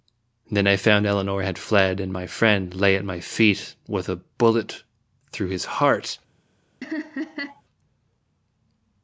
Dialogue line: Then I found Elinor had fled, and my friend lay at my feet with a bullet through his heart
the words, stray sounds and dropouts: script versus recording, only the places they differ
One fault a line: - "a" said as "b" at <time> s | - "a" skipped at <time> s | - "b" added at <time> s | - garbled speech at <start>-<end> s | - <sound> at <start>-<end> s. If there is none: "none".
- laugh at 6.8-7.6 s